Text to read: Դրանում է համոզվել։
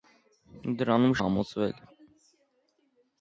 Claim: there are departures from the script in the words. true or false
false